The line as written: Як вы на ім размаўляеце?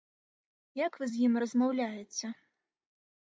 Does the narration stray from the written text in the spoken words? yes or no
yes